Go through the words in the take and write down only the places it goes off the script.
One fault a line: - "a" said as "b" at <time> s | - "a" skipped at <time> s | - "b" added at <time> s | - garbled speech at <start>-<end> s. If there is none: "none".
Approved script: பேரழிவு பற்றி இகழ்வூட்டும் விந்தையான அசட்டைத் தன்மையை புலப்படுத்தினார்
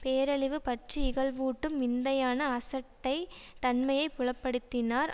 none